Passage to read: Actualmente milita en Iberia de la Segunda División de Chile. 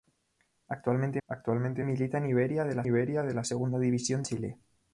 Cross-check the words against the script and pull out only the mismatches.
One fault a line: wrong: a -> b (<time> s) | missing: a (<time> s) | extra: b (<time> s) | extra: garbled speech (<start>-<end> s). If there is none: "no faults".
extra: actualmente (1.3 s)
extra: Iberia de la (2.8 s)
missing: de (4.2 s)